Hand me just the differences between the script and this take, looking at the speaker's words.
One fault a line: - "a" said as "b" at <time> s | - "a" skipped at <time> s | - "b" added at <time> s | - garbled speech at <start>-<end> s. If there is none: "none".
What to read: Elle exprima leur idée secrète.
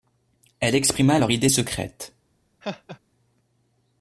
none